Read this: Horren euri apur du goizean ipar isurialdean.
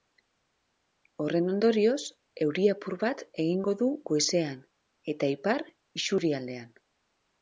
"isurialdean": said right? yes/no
yes